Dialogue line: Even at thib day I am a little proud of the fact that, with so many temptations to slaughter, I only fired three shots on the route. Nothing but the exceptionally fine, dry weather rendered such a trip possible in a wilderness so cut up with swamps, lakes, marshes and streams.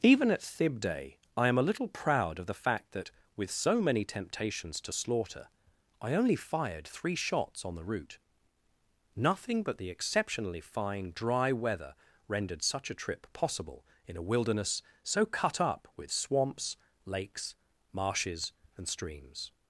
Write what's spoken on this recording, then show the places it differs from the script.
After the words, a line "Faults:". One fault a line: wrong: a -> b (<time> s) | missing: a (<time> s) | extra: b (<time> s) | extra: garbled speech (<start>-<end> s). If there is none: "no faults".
Even at thib day I am a little proud of the fact that, with so many temptations to slaughter, I only fired three shots on the route. Nothing but the exceptionally fine, dry weather rendered such a trip possible in a wilderness so cut up with swamps, lakes, marshes and streams.
Faults:
no faults